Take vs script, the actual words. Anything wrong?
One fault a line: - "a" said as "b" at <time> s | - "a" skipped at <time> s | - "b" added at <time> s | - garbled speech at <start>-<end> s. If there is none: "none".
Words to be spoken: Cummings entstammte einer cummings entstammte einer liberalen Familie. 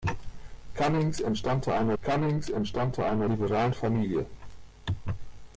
none